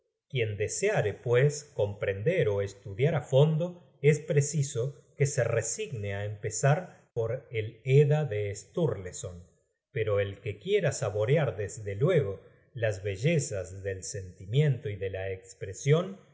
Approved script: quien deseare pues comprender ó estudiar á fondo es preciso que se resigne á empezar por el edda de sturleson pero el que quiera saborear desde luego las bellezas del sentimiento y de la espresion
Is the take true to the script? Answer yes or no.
yes